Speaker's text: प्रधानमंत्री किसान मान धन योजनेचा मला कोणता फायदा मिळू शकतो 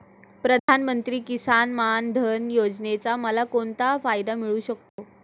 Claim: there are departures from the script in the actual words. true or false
false